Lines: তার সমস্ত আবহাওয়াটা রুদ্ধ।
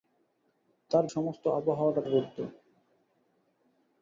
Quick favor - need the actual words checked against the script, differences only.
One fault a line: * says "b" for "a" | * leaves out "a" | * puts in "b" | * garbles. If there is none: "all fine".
all fine